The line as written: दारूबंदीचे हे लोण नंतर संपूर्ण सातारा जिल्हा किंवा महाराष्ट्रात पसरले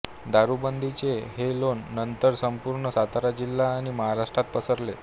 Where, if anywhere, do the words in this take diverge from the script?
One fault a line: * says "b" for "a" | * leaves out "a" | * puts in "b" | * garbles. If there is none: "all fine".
* says "आणि" for "किंवा"